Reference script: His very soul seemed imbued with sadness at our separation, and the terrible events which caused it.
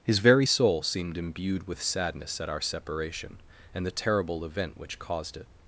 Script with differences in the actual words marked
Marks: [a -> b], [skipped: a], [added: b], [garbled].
His very soul seemed imbued with sadness at our separation, and the terrible [events -> event] which caused it.